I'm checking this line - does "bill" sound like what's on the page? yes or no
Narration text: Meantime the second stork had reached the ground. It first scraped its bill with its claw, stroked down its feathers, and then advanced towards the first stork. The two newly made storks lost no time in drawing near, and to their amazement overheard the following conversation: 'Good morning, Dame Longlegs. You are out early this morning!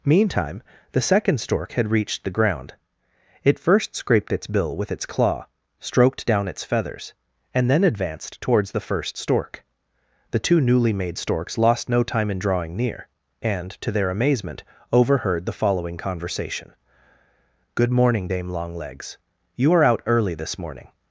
yes